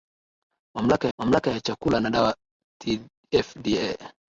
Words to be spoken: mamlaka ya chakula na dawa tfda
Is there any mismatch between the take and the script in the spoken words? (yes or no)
yes